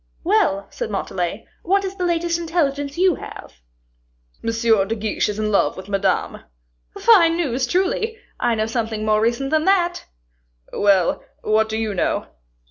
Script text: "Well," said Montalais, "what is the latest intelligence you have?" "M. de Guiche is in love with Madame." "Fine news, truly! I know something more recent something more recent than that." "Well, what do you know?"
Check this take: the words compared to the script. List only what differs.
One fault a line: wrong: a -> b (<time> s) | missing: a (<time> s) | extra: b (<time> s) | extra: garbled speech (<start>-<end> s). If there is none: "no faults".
missing: something more recent (9.5 s)